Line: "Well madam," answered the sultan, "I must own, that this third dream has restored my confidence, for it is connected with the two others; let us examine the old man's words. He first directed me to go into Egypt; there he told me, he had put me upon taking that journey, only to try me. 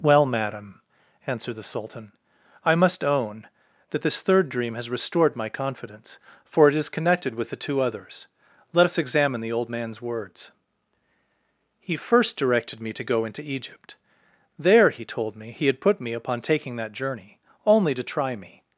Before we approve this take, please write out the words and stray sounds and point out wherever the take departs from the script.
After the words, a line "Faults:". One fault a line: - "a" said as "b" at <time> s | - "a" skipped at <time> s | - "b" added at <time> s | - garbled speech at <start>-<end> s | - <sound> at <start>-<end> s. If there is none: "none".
"Well madam," answered the sultan, "I must own, that this third dream has restored my confidence, for it is connected with the two others; let us examine the old man's words. He first directed me to go into Egypt; there he told me, he had put me upon taking that journey, only to try me.
Faults:
none